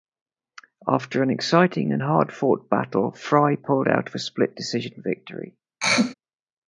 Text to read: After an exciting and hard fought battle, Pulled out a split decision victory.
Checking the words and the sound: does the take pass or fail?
fail